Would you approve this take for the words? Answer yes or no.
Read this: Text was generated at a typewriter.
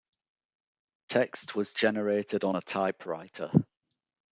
no